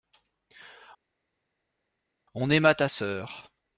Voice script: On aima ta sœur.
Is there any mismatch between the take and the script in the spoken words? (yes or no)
no